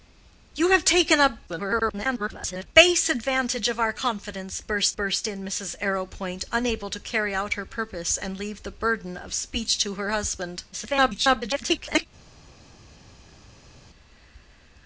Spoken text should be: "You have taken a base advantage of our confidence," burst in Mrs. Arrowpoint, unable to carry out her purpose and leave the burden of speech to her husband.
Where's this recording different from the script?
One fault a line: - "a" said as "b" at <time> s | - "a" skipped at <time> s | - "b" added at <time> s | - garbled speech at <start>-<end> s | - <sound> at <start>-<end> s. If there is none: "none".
- garbled speech at 1.5-2.7 s
- "burst" added at 4.9 s
- garbled speech at 10.7-12.1 s